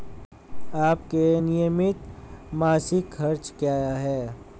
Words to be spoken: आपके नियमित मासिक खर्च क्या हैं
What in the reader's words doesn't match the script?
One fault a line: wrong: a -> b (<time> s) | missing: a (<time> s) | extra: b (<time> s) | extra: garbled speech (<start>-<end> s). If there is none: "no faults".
no faults